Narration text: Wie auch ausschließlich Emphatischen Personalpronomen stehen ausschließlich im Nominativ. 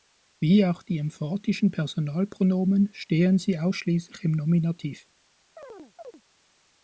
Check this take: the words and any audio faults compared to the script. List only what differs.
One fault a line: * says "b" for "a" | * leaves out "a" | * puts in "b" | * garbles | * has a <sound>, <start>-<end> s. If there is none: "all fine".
* says "die" for "ausschließlich"
* puts in "sie"
* has a chirp, 5.6-6.2 s